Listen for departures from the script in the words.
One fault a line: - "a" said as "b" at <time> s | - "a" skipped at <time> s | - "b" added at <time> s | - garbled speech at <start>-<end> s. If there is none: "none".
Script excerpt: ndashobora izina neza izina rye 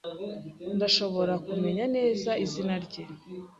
- "izina" said as "kumenya" at 1.5 s